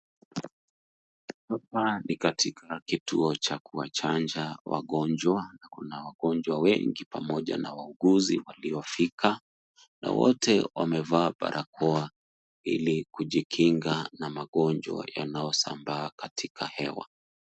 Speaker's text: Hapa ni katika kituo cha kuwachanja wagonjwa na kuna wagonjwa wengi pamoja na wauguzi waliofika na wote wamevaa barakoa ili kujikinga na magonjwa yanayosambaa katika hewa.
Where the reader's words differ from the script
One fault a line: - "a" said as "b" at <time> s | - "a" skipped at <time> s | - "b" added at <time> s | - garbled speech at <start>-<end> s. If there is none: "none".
none